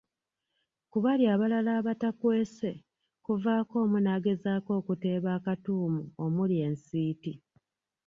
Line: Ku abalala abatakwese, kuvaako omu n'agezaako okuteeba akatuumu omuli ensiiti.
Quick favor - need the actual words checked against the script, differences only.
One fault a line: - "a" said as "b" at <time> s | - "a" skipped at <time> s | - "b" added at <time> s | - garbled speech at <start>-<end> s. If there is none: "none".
- "bali" added at 1.0 s